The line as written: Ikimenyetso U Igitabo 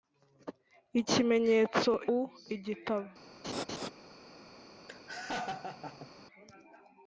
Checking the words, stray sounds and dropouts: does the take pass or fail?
fail